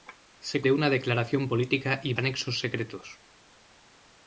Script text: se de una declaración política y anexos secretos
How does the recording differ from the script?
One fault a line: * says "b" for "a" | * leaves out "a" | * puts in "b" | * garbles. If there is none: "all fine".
all fine